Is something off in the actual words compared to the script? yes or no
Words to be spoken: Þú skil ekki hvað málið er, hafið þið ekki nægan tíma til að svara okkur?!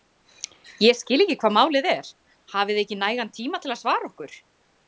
yes